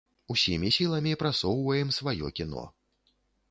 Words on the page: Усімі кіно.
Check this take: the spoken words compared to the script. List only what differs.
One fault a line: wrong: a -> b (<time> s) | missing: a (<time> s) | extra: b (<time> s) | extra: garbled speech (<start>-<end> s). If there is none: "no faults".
extra: сіламі прасоўваем сваё (0.8 s)